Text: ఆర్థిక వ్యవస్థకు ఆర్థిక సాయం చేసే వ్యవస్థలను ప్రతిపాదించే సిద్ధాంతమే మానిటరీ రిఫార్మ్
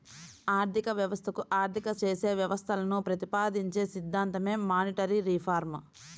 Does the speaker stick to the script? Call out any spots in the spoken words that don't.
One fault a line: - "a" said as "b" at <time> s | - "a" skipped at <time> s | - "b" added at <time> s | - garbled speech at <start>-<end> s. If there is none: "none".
- "సాయం" skipped at 1.9 s